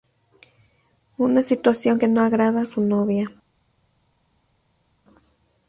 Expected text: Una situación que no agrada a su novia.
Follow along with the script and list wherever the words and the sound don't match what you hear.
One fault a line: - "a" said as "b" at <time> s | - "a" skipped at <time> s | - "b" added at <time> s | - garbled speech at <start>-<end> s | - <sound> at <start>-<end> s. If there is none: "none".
none